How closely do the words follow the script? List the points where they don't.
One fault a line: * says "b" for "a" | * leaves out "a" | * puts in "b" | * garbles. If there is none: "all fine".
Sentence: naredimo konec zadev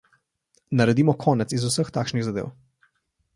* puts in "iz vseh takšnih"